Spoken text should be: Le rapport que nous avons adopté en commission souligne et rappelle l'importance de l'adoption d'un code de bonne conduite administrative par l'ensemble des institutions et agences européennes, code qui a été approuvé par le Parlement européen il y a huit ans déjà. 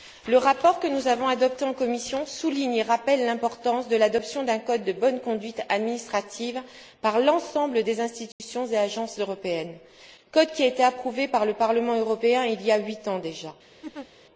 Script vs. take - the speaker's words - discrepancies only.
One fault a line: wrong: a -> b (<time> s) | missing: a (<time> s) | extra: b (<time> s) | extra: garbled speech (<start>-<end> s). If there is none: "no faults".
no faults